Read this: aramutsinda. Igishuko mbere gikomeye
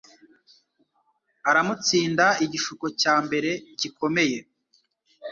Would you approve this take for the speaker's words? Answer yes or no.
no